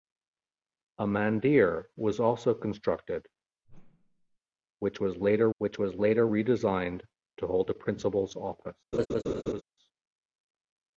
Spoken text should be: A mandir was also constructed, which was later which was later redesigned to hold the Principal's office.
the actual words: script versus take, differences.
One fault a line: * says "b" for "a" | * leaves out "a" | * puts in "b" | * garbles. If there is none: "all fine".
all fine